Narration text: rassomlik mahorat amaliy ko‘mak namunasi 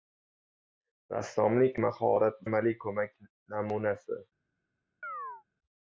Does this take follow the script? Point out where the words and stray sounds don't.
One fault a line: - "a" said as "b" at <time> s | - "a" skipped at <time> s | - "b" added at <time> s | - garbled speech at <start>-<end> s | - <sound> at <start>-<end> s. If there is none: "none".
- chirp at 5.0-5.4 s